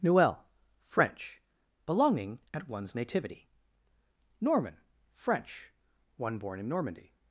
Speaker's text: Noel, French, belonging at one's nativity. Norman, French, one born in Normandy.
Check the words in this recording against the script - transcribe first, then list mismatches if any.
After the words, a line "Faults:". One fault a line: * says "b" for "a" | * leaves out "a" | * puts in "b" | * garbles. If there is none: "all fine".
Noel, French, belonging at one's nativity. Norman, French, one born in Normandy.
Faults:
all fine